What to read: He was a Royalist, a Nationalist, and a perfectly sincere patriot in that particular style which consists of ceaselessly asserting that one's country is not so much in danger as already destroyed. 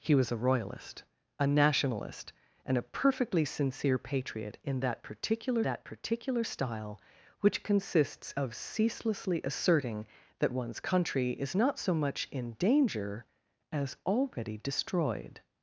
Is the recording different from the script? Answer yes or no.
yes